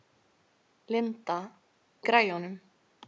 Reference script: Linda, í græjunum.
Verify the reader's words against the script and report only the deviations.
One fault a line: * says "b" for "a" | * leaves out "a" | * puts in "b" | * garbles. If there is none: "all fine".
all fine